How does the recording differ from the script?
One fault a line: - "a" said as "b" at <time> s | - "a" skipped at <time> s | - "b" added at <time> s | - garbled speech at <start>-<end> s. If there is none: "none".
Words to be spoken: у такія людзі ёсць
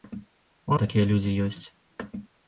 none